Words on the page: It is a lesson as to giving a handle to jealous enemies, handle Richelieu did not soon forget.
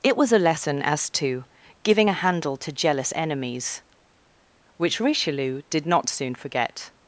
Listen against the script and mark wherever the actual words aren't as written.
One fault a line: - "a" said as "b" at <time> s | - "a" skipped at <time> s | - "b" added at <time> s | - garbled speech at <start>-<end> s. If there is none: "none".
- "is" said as "was" at 0.2 s
- "handle" said as "which" at 4.8 s